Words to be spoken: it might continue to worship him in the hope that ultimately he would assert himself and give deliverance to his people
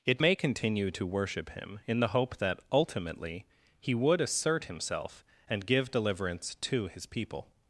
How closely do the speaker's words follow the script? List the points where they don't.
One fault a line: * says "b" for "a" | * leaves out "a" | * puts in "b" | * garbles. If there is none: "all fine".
* says "may" for "might"